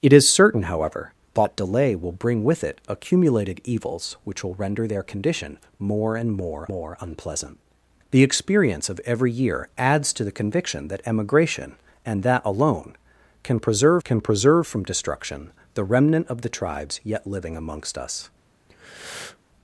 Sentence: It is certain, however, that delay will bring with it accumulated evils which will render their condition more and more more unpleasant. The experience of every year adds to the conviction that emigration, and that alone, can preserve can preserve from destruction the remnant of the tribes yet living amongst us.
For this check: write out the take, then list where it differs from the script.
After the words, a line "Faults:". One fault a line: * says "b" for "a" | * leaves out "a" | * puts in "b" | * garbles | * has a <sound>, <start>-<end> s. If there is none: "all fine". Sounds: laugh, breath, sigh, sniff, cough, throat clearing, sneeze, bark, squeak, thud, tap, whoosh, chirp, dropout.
It is certain, however, that delay will bring with it accumulated evils which will render their condition more and more more unpleasant. The experience of every year adds to the conviction that emigration, and that alone, can preserve can preserve from destruction the remnant of the tribes yet living amongst us.
Faults:
* has a breath, 18.7-19.4 s